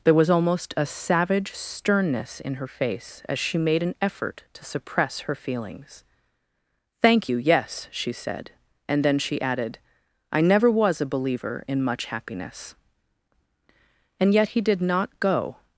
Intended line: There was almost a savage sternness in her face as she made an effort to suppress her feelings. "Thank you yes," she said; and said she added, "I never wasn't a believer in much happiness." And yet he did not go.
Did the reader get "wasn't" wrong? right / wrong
wrong